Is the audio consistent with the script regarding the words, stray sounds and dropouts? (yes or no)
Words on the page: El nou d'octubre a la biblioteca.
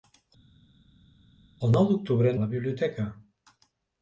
yes